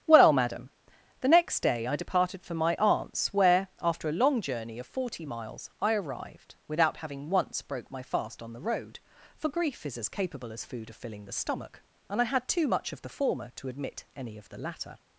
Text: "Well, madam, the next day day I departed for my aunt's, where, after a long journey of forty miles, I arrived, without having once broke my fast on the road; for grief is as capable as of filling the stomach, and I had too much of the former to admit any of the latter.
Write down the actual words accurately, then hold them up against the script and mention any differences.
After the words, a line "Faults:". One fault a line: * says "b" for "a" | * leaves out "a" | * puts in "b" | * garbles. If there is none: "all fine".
"Well, madam, the next day I departed for my aunt's, where, after a long journey of forty miles, I arrived, without having once broke my fast on the road; for grief is as capable as food of filling the stomach, and I had too much of the former to admit any of the latter.
Faults:
* leaves out "day"
* puts in "food"